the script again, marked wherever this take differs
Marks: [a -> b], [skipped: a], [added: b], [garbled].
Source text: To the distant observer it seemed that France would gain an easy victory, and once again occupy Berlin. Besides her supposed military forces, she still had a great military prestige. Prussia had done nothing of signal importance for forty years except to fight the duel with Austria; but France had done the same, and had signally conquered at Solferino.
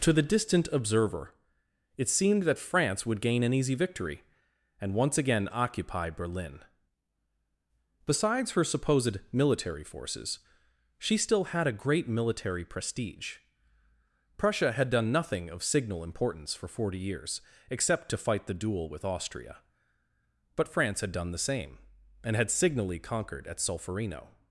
To the distant observer it seemed that France would gain an easy victory, and once again occupy Berlin. Besides her supposed military forces, she still had a great military prestige. Prussia had done nothing of signal importance for forty years except to fight the duel with Austria; but France had done the same, and had signally conquered at Solferino.